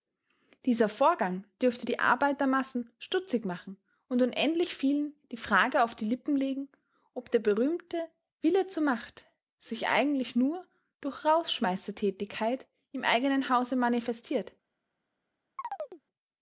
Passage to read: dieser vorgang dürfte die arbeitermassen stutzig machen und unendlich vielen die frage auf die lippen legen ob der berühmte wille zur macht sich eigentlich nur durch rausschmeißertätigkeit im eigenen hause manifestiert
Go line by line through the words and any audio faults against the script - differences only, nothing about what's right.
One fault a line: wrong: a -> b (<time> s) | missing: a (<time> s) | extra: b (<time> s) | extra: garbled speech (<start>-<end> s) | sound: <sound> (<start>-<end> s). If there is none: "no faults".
sound: chirp (15.6-16.0 s)